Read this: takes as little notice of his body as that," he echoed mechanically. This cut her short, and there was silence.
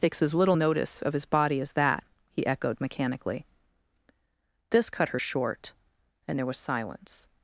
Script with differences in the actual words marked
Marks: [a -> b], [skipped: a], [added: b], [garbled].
takes as little notice of his body as that," he echoed mechanically. This cut her short, and there was silence.